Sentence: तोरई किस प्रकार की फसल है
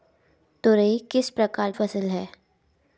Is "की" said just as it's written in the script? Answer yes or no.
no